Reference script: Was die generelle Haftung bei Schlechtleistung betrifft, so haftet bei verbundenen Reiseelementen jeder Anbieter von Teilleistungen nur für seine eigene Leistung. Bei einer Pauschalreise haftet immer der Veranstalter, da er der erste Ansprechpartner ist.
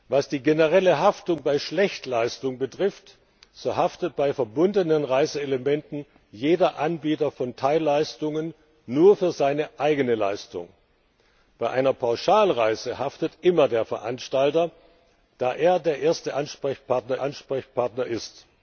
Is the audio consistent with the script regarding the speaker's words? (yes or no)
no